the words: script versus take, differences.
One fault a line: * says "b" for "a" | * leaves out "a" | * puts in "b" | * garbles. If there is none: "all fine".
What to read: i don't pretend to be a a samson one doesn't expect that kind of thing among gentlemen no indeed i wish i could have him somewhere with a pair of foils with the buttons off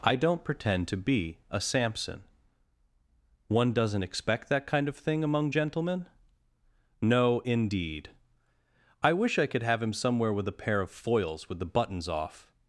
* leaves out "a"